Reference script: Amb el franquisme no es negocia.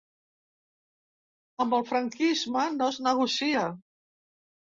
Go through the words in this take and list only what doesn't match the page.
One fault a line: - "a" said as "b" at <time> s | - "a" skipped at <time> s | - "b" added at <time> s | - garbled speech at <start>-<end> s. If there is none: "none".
none